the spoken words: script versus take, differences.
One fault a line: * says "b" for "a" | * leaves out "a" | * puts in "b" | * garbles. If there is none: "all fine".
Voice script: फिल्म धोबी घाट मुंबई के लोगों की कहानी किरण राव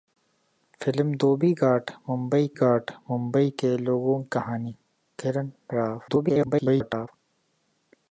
* puts in "घाट मुंबई"
* leaves out "की"
* garbles